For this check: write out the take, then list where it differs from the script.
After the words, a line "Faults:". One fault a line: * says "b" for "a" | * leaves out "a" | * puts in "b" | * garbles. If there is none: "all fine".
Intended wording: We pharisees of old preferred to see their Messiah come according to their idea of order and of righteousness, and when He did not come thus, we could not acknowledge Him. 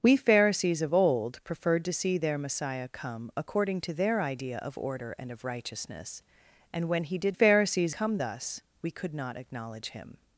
We pharisees of old preferred to see their Messiah come according to their idea of order and of righteousness, and when He did pharisees come thus, we could not acknowledge Him.
Faults:
* says "pharisees" for "not"